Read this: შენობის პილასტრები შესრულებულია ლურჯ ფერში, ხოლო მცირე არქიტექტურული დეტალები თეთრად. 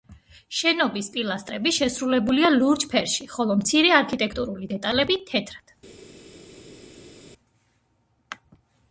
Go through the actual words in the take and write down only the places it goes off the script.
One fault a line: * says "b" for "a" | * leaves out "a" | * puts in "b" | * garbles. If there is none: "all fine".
all fine